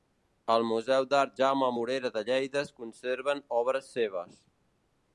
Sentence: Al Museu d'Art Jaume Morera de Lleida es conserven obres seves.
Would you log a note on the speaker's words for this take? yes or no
no